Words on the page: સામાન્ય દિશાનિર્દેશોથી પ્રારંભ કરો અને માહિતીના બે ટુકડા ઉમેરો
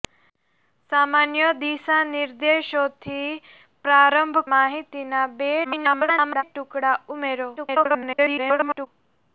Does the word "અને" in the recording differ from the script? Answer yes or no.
yes